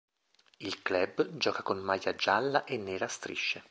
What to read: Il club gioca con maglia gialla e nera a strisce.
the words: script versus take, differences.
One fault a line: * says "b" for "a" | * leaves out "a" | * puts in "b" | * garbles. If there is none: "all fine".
all fine